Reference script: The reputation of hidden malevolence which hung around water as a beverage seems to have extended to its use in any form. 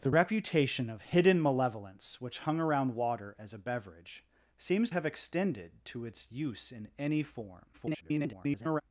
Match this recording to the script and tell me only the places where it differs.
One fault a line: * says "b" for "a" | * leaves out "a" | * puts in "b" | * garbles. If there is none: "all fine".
* leaves out "to"
* garbles